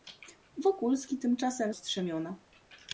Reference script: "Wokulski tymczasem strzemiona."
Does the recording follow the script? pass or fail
pass